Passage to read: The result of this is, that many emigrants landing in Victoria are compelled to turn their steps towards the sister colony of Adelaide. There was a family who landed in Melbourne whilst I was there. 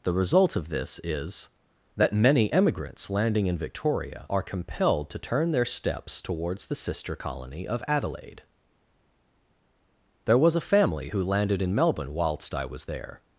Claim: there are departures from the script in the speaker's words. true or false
false